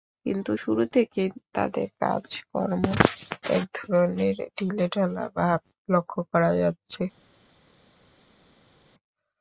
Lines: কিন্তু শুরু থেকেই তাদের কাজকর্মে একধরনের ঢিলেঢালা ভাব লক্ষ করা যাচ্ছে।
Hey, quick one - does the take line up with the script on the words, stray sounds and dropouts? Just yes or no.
yes